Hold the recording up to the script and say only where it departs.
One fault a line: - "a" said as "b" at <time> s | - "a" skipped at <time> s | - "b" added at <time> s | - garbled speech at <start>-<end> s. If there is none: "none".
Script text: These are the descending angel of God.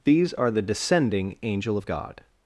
none